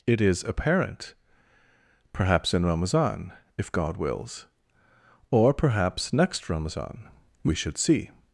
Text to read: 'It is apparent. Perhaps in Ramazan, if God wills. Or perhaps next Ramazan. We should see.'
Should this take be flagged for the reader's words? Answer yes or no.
no